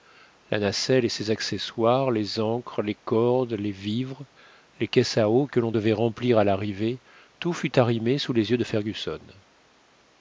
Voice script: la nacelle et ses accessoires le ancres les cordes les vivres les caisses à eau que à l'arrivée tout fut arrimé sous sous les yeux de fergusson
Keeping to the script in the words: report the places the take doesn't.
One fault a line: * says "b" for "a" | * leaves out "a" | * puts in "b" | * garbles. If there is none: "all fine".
* says "les" for "le"
* puts in "l'on devait remplir"
* leaves out "sous"